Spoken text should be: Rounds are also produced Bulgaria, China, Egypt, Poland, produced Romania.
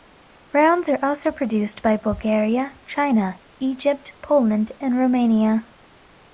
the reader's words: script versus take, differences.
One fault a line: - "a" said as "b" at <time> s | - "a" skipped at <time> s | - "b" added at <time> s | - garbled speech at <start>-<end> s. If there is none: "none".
- "by" added at 1.8 s
- "produced" said as "and" at 4.8 s